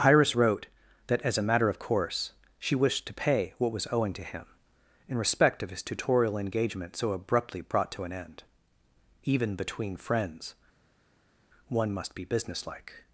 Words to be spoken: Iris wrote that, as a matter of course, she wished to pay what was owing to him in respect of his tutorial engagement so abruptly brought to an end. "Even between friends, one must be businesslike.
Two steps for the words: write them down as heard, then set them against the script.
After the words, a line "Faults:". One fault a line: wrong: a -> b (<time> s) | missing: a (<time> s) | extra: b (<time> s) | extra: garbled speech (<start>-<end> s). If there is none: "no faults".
Iris wrote that, as a matter of course, she wished to pay what was owing to him in respect of his tutorial engagement so abruptly brought to an end. "Even between friends, one must be businesslike.
Faults:
no faults